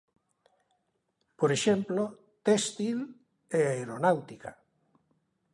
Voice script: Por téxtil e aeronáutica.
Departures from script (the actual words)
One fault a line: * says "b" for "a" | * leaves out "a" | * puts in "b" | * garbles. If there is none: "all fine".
* puts in "exemplo"